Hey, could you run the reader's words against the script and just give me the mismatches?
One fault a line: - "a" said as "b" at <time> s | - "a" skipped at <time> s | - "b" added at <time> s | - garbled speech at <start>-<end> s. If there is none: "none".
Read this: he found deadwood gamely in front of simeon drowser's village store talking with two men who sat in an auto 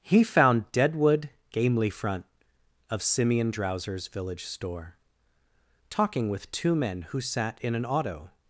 - "in" skipped at 1.9 s